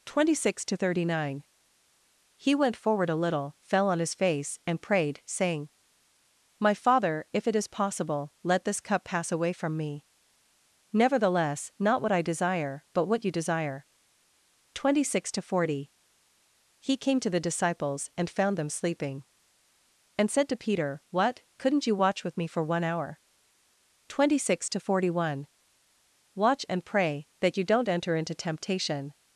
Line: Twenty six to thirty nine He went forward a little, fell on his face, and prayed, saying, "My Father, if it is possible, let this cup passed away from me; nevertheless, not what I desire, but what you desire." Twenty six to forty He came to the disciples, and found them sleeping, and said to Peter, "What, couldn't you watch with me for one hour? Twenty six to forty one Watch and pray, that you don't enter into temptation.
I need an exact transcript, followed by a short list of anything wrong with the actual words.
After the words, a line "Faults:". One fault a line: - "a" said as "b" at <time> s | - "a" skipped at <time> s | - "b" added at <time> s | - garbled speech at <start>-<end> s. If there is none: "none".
Twenty six to thirty nine He went forward a little, fell on his face, and prayed, saying, "My Father, if it is possible, let this cup pass away from me; nevertheless, not what I desire, but what you desire." Twenty six to forty He came to the disciples, and found them sleeping, and said to Peter, "What, couldn't you watch with me for one hour? Twenty six to forty one Watch and pray, that you don't enter into temptation.
Faults:
- "passed" said as "pass" at 9.0 s